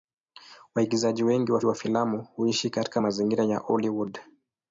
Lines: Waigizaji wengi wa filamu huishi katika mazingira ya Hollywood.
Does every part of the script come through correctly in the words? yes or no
no